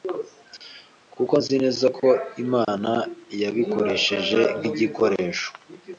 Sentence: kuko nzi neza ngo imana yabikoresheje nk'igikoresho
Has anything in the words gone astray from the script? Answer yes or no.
yes